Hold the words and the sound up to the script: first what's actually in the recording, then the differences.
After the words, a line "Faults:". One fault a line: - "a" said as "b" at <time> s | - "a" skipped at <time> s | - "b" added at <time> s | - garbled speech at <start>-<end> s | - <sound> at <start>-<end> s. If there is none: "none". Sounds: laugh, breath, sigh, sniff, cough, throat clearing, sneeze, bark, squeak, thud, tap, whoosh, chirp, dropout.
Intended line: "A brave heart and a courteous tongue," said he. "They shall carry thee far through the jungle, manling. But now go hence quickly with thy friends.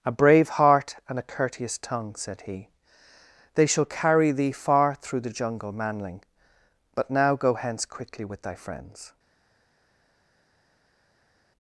"A brave heart and a courteous tongue," said he. "They shall carry thee far through the jungle, manling. But now go hence quickly with thy friends.
Faults:
none